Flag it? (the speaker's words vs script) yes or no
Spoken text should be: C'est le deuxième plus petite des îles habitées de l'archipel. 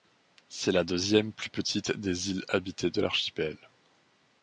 yes